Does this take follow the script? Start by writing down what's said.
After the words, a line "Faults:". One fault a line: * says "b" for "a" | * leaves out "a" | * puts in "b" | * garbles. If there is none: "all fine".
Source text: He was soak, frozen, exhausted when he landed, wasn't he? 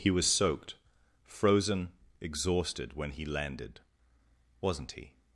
He was soaked, frozen, exhausted when he landed, wasn't he?
Faults:
* says "soaked" for "soak"